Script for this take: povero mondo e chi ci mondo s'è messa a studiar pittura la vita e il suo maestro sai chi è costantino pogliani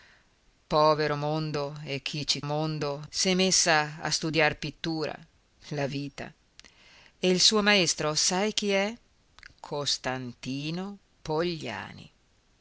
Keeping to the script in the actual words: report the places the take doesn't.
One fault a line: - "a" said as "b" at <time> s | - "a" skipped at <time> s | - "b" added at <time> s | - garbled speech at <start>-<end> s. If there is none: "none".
none